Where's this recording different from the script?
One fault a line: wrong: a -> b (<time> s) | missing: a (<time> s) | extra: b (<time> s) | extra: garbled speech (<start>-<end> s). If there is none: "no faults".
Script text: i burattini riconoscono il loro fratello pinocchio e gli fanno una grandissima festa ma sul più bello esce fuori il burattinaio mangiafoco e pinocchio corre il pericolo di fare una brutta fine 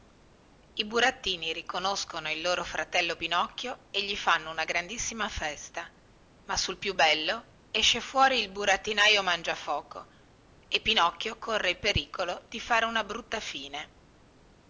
no faults